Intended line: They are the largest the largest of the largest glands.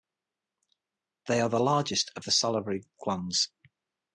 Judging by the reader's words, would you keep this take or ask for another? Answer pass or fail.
fail